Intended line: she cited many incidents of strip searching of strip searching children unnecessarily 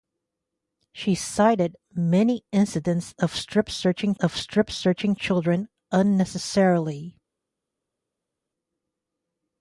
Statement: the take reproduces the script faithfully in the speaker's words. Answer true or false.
true